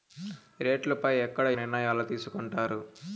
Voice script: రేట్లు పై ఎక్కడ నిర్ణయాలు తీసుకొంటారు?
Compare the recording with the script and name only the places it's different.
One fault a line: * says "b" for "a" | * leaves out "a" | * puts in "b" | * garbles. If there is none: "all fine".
all fine